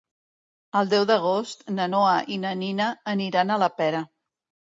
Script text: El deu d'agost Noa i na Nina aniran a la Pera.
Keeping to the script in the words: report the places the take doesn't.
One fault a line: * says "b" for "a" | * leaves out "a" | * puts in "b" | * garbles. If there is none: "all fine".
* puts in "na"